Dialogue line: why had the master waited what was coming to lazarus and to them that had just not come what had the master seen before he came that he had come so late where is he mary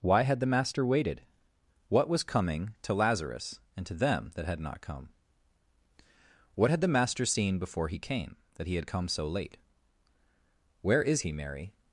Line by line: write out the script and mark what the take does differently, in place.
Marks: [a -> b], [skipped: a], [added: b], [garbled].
why had the master waited what was coming to lazarus and to them that had [skipped: just] not come what had the master seen before he came that he had come so late where is he mary